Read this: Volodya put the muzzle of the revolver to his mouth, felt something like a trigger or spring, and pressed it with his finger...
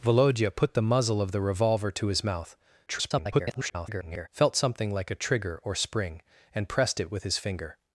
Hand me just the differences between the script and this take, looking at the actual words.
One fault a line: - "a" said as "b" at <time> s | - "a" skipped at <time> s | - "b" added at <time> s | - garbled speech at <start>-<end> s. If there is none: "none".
- garbled speech at 2.9-4.3 s